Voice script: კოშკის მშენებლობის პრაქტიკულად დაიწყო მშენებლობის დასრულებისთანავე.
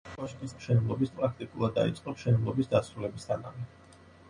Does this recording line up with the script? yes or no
yes